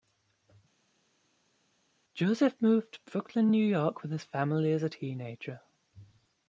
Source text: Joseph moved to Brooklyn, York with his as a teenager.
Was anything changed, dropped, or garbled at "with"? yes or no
no